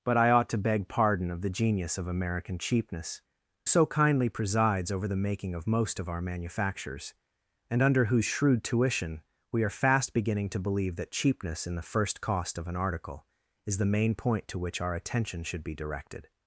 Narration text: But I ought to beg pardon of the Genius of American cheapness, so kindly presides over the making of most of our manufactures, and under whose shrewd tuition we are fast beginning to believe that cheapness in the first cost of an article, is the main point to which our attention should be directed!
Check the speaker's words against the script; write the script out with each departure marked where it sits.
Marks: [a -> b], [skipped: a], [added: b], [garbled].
But I ought to beg pardon of the Genius of American cheapness, so kindly presides over the making of most of our manufactures, and under whose shrewd tuition we are fast beginning to believe that cheapness in the first cost of an article, is the main point to which our attention should be directed!